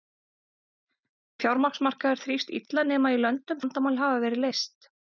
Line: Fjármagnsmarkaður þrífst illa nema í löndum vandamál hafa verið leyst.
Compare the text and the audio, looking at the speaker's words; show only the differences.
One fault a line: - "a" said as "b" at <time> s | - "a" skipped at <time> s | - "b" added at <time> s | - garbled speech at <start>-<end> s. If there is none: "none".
none